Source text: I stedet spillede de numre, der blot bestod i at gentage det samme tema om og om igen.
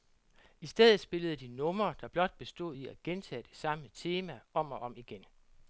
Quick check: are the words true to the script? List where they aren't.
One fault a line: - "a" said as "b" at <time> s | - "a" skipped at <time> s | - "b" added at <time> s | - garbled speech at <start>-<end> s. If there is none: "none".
none